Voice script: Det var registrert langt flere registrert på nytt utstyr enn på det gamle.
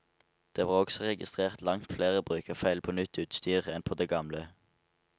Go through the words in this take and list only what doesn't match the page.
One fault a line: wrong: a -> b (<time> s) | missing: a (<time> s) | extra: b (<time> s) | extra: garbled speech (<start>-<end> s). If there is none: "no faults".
extra: også (0.7 s)
wrong: registrert -> brukerfeil (2.2 s)